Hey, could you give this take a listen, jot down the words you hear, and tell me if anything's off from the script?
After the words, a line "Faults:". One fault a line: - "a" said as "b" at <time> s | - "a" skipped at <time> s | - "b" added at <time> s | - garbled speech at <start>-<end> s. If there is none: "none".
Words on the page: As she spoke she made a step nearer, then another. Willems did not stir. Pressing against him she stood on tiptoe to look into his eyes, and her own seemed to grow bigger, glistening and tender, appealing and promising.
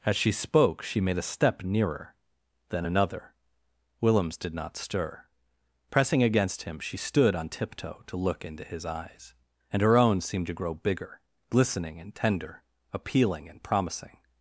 As she spoke she made a step nearer, then another. Willems did not stir. Pressing against him she stood on tiptoe to look into his eyes, and her own seemed to grow bigger, glistening and tender, appealing and promising.
Faults:
none